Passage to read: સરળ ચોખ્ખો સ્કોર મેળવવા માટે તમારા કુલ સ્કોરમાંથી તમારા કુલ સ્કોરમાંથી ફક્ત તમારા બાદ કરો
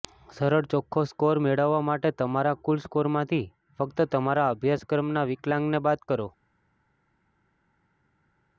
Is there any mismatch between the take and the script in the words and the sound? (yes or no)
yes